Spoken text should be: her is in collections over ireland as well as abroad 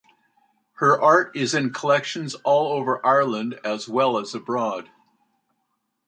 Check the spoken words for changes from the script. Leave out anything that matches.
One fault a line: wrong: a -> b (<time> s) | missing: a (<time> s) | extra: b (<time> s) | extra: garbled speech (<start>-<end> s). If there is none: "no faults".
extra: art (1.0 s)
extra: all (2.4 s)